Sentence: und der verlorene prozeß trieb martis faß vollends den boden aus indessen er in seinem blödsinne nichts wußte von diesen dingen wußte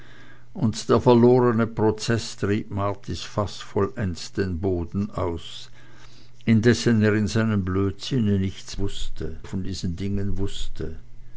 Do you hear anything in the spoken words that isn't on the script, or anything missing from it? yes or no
no